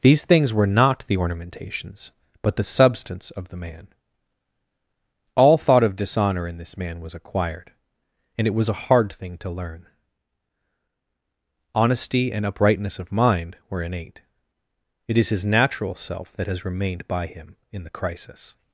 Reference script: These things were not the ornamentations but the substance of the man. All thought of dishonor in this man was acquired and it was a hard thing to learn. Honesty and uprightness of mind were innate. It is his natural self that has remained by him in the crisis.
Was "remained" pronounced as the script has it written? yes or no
yes